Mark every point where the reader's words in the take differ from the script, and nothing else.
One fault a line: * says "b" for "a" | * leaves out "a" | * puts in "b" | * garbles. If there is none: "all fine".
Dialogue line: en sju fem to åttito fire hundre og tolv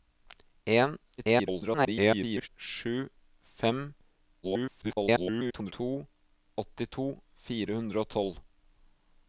* garbles
* garbles